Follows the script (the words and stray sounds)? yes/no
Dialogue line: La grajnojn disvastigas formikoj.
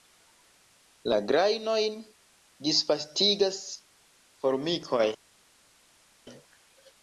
yes